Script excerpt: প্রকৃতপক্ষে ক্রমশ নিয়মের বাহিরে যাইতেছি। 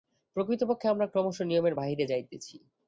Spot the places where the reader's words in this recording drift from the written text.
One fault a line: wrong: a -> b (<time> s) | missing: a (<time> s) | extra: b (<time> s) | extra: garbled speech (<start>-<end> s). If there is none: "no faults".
extra: আমরা (0.9 s)